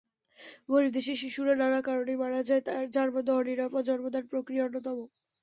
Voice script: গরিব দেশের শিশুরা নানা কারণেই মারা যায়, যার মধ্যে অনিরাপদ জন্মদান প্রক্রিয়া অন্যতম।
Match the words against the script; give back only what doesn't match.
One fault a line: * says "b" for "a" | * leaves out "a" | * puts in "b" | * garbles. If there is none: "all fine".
all fine